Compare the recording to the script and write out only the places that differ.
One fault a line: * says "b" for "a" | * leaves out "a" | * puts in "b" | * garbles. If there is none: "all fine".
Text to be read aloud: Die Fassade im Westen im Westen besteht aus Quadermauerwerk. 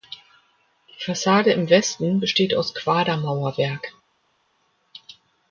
* leaves out "im Westen"